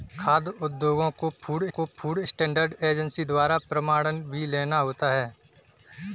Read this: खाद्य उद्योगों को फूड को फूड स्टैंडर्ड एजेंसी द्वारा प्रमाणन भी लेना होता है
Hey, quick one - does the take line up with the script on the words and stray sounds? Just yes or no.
yes